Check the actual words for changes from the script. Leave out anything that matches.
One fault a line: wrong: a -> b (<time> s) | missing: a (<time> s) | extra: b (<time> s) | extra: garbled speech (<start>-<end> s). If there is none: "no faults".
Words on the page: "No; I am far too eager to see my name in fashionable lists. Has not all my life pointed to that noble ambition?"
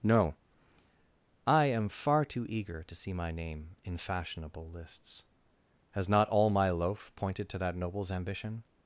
wrong: life -> loaf (6.7 s)
wrong: noble -> nobles (7.8 s)